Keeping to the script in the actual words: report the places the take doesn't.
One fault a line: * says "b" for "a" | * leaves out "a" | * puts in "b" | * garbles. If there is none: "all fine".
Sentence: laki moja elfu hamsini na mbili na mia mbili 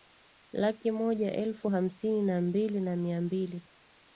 all fine